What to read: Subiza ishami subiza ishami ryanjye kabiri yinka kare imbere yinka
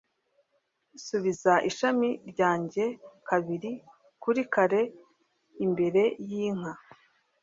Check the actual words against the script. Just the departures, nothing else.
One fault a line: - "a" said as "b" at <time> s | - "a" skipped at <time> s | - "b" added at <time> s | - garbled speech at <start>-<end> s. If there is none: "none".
- "subiza ishami" skipped at 2.1 s
- "yinka" said as "kuri" at 4.2 s